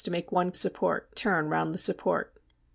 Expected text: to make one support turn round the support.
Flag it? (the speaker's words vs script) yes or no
no